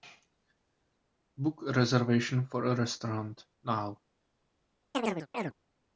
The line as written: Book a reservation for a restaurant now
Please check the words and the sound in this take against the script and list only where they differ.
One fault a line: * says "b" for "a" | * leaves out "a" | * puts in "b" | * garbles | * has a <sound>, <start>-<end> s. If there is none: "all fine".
* has a chirp, 4.9-5.5 s